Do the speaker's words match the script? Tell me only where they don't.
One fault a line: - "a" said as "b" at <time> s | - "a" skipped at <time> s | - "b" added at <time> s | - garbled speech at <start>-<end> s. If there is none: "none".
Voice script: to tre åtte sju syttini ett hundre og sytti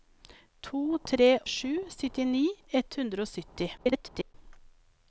- "åtte" skipped at 1.3 s
- garbled speech at 3.8-4.3 s